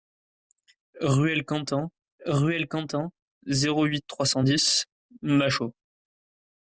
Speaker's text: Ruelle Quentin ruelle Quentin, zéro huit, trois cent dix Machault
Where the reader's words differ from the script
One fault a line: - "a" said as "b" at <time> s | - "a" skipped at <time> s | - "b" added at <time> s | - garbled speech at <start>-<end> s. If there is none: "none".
none